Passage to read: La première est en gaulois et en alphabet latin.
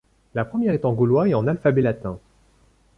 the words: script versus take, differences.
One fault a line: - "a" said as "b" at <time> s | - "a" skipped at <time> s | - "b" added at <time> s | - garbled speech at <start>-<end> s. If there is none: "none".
none